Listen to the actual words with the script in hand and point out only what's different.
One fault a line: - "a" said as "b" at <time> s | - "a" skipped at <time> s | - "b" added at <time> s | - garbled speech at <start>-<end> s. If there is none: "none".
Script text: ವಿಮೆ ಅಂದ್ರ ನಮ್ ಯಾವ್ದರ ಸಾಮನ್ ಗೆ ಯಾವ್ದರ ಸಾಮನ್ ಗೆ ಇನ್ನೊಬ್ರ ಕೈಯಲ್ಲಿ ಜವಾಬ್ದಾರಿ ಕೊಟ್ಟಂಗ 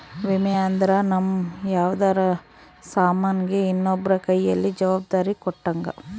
- "ಯಾವ್ದರ ಸಾಮನ್ ಗೆ" skipped at 3.6 s